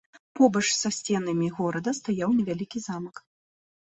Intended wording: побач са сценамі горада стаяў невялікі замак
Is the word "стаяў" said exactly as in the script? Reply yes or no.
yes